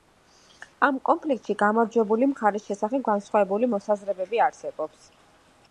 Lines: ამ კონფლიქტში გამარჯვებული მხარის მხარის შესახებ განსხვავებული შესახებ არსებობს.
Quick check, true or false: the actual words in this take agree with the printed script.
false